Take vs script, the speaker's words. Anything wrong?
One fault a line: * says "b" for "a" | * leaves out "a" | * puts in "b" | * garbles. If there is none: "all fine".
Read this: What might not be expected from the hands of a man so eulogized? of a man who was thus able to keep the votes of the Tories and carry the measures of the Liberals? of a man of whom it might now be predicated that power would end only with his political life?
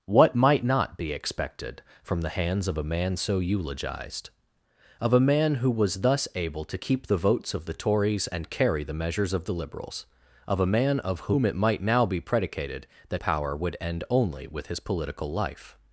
all fine